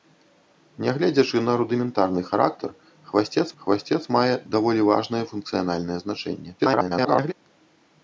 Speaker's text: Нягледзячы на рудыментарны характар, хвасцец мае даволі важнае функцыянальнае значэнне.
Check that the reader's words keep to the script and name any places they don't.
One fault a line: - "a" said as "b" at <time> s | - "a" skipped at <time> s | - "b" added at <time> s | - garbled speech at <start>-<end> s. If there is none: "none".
- "хвасцец" added at 3.6 s
- garbled speech at 6.6-7.3 s